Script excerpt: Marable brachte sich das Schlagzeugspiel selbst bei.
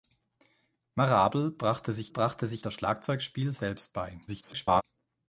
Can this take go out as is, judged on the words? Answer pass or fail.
fail